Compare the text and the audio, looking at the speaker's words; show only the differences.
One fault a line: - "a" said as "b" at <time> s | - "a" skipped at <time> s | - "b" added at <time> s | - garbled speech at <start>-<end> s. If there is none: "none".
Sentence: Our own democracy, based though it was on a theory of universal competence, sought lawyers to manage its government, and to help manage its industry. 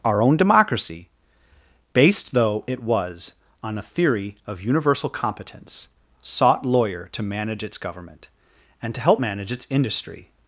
- "lawyers" said as "lawyer" at 6.7 s